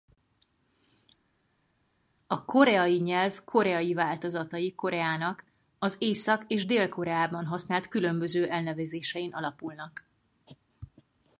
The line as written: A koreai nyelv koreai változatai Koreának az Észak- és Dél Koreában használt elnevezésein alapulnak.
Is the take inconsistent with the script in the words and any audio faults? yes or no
yes